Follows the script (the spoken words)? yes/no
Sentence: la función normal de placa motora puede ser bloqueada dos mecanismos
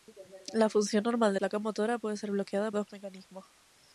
yes